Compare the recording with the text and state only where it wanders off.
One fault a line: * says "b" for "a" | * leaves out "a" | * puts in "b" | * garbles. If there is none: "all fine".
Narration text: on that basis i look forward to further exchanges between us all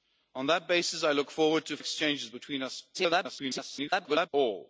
* leaves out "further"
* garbles